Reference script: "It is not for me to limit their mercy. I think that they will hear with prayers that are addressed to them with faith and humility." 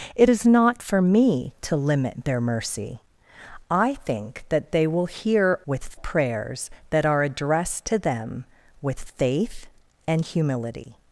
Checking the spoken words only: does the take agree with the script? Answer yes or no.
yes